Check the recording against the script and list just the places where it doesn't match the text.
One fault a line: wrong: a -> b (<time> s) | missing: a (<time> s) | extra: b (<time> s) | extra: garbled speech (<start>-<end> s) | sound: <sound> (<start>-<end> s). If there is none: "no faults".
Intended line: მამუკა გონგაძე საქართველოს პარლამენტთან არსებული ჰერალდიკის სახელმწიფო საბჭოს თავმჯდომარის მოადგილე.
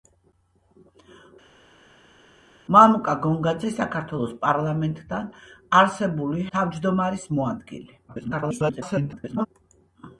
missing: ჰერალდიკის სახელმწიფო საბჭოს (6.5 s)
extra: garbled speech (8.1-9.5 s)